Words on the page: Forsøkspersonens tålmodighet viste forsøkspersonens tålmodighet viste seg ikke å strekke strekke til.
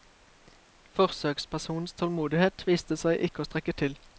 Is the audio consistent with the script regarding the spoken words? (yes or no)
no